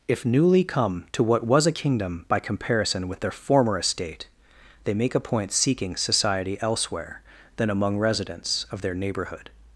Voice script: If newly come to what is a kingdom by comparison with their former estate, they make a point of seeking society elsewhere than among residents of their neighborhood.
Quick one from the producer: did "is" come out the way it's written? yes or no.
no